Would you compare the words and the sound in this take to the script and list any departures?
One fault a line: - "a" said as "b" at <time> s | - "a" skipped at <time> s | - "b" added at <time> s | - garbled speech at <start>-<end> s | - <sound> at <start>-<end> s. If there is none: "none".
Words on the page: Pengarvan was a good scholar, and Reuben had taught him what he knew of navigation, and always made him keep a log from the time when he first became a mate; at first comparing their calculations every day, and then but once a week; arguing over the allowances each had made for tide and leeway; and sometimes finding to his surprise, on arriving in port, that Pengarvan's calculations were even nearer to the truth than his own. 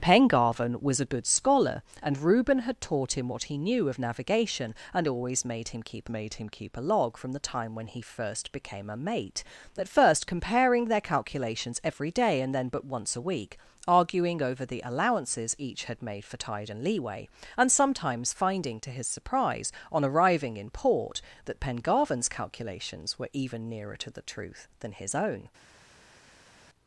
- "made him keep" added at 6.1 s